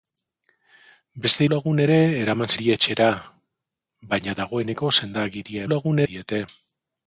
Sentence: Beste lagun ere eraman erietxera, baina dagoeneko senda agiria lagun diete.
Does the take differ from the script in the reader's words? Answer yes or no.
no